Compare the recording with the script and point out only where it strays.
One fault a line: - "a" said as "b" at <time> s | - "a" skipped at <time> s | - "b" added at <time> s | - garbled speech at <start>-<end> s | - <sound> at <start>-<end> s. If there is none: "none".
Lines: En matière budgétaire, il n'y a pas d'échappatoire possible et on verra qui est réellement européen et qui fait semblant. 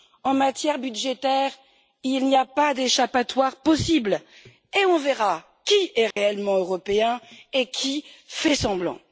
- dropout at 6.1-6.2 s